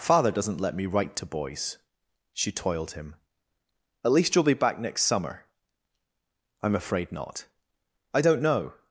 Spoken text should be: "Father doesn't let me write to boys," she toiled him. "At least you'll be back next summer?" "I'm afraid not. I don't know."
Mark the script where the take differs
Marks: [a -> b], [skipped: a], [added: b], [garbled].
"Father doesn't let me write to boys," she toiled him. "At least you'll be back next summer?" "I'm afraid not. I don't know."